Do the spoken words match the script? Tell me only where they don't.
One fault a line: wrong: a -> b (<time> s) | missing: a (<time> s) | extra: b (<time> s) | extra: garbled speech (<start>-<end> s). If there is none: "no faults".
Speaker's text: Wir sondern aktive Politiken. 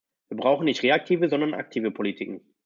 extra: brauchen nicht reaktive (0.4 s)